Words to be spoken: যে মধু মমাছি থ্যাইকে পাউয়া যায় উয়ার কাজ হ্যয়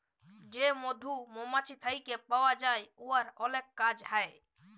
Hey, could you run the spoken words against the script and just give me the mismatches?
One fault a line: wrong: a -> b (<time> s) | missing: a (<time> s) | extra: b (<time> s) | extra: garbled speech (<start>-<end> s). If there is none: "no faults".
extra: অলেক (3.4 s)